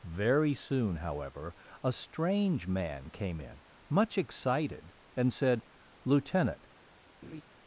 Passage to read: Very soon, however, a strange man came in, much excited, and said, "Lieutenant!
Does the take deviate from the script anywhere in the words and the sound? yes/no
yes